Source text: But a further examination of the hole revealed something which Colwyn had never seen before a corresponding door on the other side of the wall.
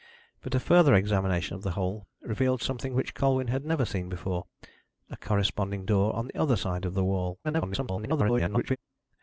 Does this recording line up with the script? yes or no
no